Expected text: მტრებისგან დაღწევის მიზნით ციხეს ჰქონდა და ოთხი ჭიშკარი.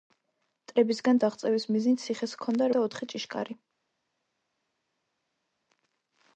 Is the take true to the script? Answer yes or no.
yes